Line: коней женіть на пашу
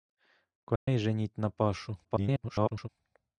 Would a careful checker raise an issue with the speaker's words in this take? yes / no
yes